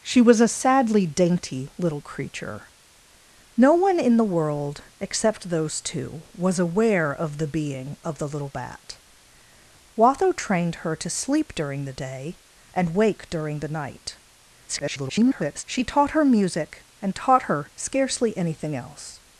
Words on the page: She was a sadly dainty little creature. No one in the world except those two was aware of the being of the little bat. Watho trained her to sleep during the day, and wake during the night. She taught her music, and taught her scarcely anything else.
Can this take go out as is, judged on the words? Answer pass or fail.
fail